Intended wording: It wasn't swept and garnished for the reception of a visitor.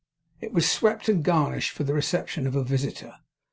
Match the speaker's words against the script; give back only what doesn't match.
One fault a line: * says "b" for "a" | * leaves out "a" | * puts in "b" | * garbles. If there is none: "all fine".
* says "was" for "wasn't"